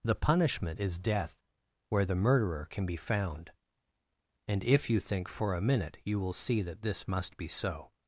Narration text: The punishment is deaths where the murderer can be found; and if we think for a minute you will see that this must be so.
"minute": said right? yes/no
yes